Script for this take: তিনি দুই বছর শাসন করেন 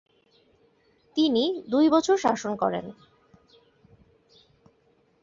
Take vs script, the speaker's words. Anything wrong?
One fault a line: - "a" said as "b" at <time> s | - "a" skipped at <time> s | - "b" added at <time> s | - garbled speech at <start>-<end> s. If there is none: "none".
none